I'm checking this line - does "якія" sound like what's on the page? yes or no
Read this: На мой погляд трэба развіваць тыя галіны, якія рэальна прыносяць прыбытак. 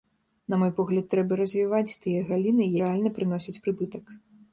no